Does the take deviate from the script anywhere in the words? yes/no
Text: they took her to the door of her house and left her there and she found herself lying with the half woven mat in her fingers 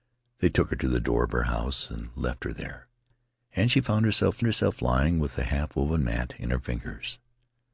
yes